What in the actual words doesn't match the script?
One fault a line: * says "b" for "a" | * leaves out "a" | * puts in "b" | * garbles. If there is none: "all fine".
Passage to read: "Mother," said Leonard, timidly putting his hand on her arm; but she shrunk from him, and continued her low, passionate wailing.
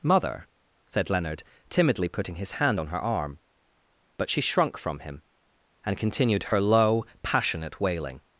all fine